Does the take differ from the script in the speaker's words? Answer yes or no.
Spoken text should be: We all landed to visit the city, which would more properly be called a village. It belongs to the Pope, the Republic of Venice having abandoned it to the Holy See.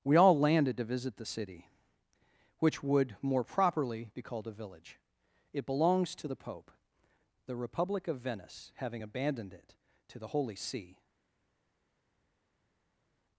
no